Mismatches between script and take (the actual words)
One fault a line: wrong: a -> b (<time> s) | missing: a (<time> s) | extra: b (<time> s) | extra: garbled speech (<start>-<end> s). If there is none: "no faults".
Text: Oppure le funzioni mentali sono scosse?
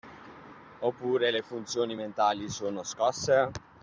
no faults